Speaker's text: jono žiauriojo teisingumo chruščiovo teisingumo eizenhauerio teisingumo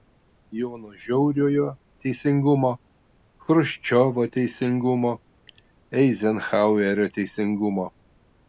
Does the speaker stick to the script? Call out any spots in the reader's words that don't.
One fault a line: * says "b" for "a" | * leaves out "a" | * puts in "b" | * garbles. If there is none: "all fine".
all fine